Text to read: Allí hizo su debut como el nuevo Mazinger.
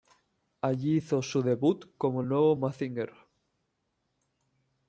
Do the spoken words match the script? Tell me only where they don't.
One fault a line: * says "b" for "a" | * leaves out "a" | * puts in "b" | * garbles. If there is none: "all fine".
all fine